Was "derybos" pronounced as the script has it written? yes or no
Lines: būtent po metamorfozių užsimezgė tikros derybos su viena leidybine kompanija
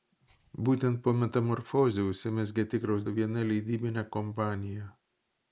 no